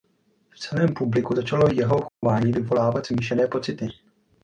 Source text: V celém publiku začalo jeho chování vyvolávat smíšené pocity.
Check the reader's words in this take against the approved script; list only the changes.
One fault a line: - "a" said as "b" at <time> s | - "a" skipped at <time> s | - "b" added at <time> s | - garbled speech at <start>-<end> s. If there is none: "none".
none